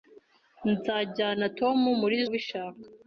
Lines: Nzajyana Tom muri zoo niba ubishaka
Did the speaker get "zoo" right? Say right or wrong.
wrong